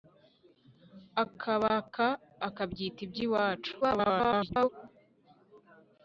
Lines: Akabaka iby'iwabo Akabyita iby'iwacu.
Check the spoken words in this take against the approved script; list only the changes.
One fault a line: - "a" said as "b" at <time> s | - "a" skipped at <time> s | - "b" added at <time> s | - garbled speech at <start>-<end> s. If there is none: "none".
- "iby'iwabo" skipped at 2.0 s
- garbled speech at 3.8-4.7 s